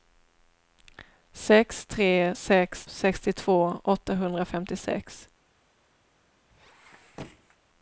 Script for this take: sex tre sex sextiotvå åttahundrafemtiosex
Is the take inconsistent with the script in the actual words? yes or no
no